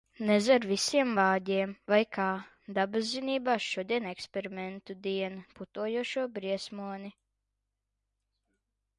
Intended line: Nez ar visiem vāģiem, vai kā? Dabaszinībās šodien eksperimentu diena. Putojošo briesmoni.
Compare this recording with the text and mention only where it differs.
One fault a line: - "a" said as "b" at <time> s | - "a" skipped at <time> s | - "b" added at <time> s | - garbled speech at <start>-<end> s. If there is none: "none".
none